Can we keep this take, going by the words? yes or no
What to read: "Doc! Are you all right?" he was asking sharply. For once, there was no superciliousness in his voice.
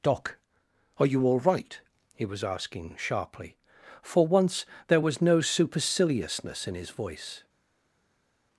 yes